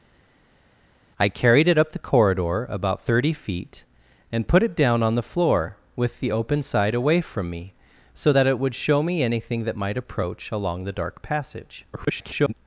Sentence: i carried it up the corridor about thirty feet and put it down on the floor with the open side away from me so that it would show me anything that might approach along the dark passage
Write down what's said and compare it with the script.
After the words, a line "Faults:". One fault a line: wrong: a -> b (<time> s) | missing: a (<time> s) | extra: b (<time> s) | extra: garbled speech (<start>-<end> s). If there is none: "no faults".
i carried it up the corridor about thirty feet and put it down on the floor with the open side away from me so that it would show me anything that might approach along the dark passage [garbled]
Faults:
extra: garbled speech (11.9-12.5 s)